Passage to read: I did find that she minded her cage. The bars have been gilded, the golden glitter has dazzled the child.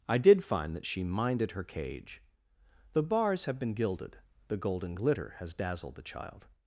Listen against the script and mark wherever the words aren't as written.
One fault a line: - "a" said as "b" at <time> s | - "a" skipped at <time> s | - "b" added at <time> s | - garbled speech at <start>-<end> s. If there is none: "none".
none